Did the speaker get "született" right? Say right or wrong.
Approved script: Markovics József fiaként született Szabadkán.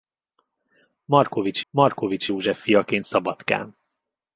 wrong